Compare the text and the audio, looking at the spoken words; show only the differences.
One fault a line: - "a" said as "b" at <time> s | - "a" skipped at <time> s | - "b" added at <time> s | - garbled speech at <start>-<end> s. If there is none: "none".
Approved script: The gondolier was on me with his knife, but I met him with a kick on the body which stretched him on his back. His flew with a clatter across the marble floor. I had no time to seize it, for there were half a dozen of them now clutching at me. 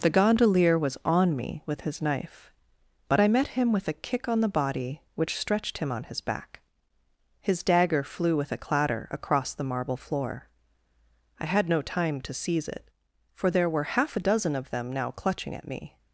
- "dagger" added at 7.6 s